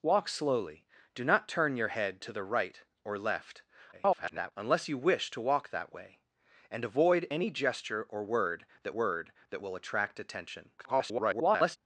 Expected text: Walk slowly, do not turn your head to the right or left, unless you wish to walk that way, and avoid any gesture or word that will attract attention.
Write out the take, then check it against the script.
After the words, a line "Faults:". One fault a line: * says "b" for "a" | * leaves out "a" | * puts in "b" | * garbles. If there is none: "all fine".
Walk slowly, do not turn your head to the right or left, [garbled] unless you wish to walk that way, and avoid any gesture or word that word that will attract attention. [garbled]
Faults:
* garbles
* puts in "word that"
* garbles